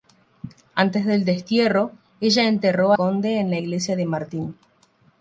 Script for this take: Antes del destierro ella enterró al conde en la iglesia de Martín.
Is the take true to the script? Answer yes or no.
no